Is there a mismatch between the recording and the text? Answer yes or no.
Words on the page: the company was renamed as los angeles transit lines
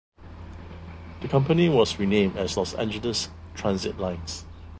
no